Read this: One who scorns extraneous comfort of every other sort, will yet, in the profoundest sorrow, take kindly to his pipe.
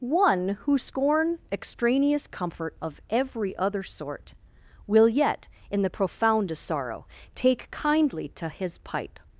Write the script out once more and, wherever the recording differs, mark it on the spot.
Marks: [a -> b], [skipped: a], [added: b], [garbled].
One who [scorns -> scorn] extraneous comfort of every other sort, will yet, in the profoundest sorrow, take kindly to his pipe.